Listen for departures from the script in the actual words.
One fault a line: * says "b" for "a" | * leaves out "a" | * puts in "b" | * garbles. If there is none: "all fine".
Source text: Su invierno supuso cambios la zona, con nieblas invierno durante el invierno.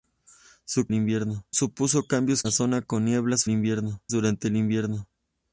all fine